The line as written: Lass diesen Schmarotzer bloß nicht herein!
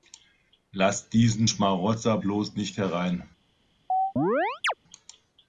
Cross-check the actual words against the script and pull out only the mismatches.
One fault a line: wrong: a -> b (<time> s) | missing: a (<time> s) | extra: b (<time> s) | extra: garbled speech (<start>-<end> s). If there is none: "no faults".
no faults